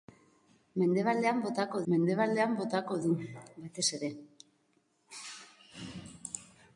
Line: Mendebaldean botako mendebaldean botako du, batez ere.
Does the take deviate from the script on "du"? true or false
false